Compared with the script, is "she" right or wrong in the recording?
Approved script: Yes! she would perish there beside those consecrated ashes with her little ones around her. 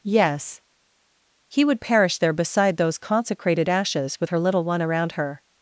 wrong